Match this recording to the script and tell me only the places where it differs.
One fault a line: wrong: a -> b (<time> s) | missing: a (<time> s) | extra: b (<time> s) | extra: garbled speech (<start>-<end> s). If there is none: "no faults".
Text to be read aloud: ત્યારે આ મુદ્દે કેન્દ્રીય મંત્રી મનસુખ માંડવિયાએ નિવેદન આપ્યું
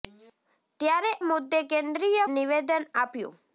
missing: આ (1.1 s)
missing: મંત્રી મનસુખ માંડવિયાએ (2.2 s)